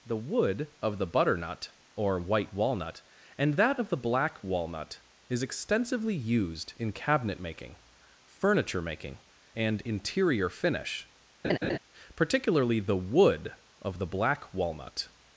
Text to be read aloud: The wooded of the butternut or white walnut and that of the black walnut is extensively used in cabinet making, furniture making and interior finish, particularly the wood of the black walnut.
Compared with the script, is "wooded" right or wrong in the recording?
wrong